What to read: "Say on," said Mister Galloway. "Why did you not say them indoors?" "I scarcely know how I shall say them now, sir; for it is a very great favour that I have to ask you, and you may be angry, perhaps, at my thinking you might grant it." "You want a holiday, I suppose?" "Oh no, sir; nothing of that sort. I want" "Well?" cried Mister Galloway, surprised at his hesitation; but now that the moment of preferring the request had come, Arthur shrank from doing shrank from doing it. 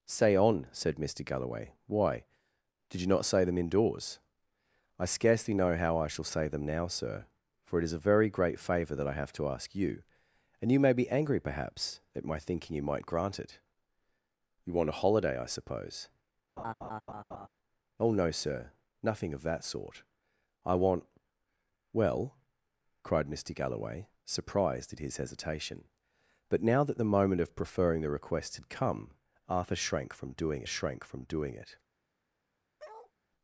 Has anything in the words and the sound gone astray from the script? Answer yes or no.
yes